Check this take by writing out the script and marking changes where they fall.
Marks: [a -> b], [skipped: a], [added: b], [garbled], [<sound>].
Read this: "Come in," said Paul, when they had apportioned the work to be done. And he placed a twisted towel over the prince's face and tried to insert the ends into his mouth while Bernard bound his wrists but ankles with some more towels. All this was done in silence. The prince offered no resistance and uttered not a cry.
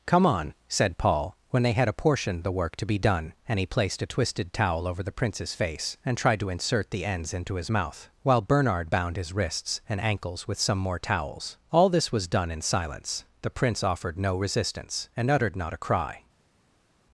"Come [in," -> on] said Paul, when they had apportioned the work to be done. And he placed a twisted towel over the prince's face and tried to insert the ends into his mouth while Bernard bound his wrists [but -> and] ankles with some more towels. All this was done in silence. The prince offered no resistance and uttered not a cry.